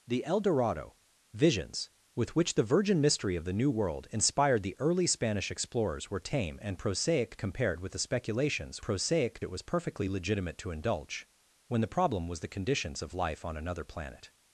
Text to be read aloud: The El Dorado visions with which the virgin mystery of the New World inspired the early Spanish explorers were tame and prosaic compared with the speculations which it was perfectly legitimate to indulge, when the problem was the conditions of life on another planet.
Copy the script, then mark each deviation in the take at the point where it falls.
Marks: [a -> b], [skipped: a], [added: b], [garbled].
The El Dorado visions with which the virgin mystery of the New World inspired the early Spanish explorers were tame and prosaic compared with the speculations [which -> prosaic] it was perfectly legitimate to indulge, when the problem was the conditions of life on another planet.